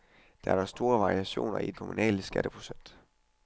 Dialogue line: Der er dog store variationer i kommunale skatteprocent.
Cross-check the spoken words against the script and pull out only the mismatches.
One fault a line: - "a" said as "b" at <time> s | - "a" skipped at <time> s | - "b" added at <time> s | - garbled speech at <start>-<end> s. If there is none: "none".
none